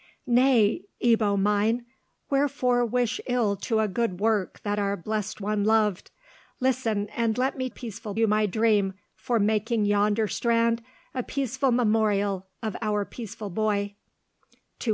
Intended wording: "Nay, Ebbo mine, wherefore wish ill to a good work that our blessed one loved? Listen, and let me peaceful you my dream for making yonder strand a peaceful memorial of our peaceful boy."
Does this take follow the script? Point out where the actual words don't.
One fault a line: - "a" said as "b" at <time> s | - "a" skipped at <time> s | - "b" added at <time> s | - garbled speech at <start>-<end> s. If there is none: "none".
none